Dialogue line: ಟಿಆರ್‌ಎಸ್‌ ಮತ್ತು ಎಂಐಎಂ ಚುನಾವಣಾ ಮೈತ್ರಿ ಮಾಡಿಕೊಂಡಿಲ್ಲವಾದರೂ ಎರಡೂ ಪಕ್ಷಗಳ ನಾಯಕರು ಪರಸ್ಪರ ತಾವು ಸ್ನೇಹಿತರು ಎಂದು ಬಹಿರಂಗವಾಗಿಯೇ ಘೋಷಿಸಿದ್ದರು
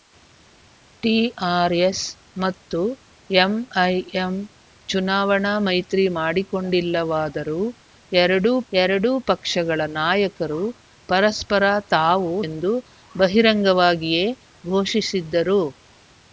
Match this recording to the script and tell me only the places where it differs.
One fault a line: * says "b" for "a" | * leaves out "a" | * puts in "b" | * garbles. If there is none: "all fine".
* puts in "ಎರಡೂ"
* leaves out "ಸ್ನೇಹಿತರು"